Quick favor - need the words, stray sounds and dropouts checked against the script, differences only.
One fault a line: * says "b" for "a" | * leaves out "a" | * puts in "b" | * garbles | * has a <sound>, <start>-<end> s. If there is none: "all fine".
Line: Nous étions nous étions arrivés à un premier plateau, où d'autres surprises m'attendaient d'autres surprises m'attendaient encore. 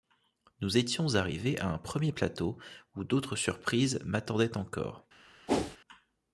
* leaves out "nous étions"
* leaves out "d'autres surprises m'attendaient"
* has a whoosh, 5.5-5.8 s